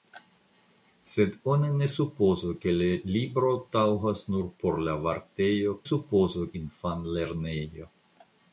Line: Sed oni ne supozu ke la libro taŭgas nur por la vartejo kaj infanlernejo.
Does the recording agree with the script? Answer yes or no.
no